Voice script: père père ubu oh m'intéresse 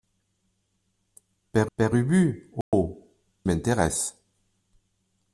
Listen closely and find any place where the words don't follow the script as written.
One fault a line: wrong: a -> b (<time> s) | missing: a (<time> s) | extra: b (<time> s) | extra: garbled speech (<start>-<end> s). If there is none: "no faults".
no faults